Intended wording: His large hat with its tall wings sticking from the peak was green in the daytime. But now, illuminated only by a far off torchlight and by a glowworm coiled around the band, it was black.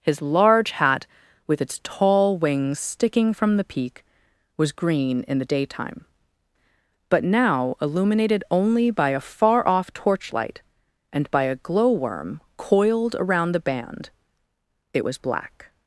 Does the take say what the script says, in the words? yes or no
yes